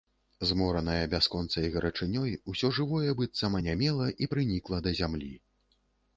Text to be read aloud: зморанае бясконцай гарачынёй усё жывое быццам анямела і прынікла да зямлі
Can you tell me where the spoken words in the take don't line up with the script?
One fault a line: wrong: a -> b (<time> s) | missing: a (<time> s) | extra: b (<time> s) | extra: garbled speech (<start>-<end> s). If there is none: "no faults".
no faults